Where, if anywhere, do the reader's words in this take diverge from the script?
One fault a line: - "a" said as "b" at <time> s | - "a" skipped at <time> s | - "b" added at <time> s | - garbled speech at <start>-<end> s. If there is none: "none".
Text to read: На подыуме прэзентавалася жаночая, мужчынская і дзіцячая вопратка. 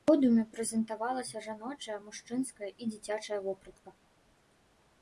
none